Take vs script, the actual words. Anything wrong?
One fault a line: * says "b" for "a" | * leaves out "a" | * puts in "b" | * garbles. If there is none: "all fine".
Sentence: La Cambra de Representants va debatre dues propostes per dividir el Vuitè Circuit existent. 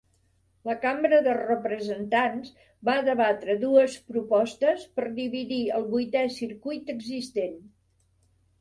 all fine